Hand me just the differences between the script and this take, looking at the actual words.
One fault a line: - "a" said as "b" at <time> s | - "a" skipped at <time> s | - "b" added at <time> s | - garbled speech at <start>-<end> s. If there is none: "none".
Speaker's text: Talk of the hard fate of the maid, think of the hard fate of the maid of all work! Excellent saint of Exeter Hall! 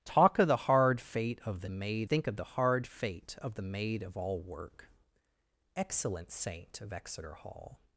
none